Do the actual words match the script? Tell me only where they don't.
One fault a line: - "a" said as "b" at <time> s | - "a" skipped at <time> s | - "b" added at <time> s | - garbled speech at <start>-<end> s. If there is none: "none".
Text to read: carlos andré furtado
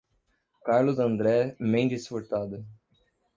- "mendes" added at 1.6 s